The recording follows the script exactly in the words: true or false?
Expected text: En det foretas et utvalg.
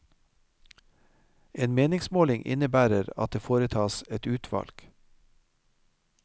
false